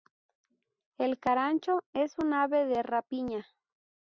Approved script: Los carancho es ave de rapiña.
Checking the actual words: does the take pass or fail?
fail